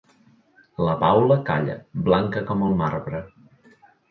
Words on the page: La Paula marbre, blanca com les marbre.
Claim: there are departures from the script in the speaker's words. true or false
true